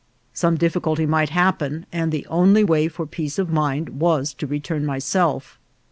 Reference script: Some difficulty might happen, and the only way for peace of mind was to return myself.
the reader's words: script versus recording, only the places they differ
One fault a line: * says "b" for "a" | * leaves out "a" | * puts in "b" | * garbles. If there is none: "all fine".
all fine